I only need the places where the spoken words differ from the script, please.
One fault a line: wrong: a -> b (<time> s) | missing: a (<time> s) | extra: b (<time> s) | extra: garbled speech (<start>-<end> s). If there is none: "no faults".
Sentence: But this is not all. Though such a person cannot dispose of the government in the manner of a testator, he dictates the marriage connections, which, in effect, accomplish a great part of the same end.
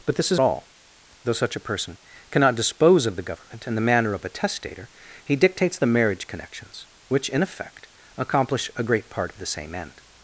missing: not (0.4 s)